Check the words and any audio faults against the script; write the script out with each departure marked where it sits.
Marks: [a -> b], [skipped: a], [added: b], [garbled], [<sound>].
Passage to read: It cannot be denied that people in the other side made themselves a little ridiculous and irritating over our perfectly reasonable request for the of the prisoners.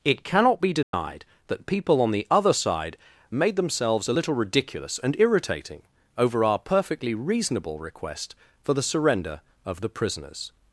It cannot be denied [dropout] that people [in -> on] the other side made themselves a little ridiculous and irritating over our perfectly reasonable request for the [added: surrender] of the prisoners.